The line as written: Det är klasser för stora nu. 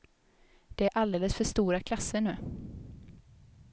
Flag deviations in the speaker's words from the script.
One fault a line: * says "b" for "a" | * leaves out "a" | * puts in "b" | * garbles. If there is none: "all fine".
* says "alldeles" for "klasser"
* puts in "klasser"